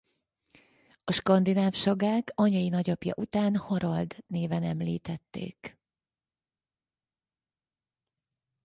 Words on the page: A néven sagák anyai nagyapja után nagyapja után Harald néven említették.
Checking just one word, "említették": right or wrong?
right